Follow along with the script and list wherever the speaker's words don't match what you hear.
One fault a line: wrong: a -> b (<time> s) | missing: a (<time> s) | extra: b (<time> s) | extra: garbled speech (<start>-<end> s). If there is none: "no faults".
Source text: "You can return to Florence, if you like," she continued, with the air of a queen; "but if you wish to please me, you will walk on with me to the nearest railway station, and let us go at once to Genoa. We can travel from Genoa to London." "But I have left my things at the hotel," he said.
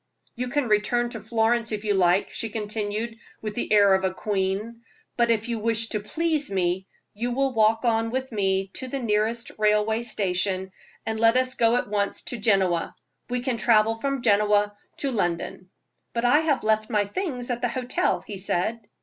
no faults